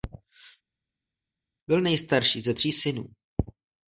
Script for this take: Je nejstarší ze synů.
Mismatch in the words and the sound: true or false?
true